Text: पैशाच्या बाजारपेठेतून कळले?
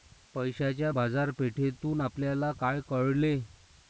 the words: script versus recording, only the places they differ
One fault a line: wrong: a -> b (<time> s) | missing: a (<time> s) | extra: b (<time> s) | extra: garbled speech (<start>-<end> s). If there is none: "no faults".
extra: आपल्याला काय (2.0 s)